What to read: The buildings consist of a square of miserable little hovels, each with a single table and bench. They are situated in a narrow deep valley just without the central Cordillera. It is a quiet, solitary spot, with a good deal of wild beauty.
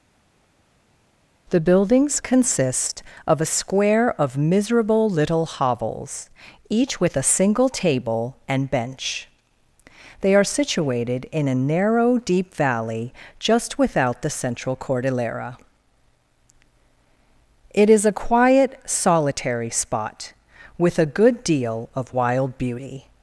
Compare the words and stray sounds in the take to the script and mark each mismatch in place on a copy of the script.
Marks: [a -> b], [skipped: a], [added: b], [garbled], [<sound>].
The buildings consist of a square of miserable little hovels, each with a single table and bench. They are situated in a narrow deep valley just without the central Cordillera. It is a quiet, solitary spot, with a good deal of wild beauty.